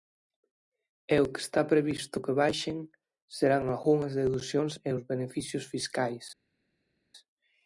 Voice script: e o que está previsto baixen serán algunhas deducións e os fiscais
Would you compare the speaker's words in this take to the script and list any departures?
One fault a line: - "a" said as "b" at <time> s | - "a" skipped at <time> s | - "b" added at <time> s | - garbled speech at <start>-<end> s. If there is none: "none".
- "que" added at 2.2 s
- "beneficios" added at 5.1 s